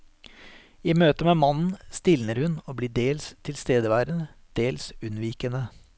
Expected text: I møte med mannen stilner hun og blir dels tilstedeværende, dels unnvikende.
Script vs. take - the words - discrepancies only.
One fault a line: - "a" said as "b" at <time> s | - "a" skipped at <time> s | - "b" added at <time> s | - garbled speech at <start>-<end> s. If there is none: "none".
none